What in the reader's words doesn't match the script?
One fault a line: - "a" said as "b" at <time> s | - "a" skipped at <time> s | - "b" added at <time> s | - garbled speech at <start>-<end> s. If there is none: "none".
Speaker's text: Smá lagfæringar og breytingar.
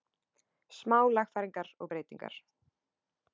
none